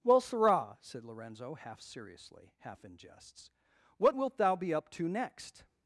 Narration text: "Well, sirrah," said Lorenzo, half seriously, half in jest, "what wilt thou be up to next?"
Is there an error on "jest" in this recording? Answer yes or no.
yes